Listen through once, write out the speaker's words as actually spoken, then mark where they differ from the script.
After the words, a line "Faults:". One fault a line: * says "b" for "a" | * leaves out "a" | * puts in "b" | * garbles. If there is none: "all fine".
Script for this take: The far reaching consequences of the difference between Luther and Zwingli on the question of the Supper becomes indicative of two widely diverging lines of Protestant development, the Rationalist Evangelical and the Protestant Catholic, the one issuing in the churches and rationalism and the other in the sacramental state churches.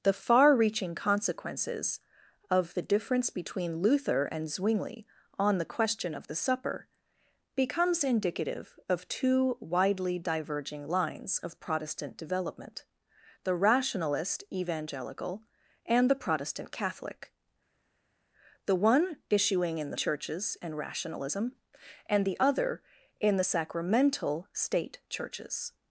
The far reaching consequences of the difference between Luther and Zwingli on the question of the Supper becomes indicative of two widely diverging lines of Protestant development, the Rationalist Evangelical and the Protestant Catholic, the one issuing in the churches and rationalism and the other in the sacramental state churches.
Faults:
all fine